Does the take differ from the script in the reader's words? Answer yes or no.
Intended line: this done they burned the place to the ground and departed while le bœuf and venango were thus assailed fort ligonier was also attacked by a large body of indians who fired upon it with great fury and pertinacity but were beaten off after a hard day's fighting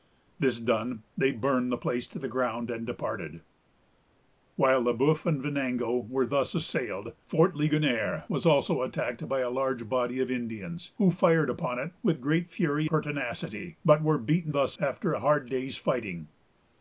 yes